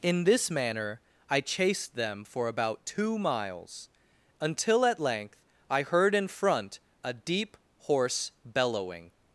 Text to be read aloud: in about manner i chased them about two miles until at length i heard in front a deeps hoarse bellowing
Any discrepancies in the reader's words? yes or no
yes